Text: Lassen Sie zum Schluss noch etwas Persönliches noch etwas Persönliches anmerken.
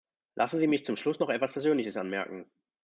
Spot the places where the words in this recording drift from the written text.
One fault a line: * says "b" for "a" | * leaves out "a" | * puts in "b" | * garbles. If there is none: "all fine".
* puts in "mich"
* leaves out "noch etwas Persönliches"